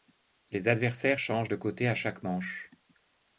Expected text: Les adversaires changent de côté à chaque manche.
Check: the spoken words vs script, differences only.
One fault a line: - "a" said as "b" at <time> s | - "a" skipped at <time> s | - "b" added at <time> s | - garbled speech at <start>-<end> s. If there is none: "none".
none